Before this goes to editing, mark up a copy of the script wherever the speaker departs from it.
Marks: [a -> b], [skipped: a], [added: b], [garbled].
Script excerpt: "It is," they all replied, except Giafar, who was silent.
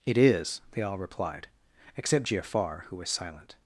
"It is," they all replied, except Giafar, who was silent.